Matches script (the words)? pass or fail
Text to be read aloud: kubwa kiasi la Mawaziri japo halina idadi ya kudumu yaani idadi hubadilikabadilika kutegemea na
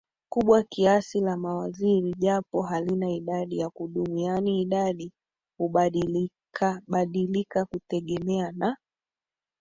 pass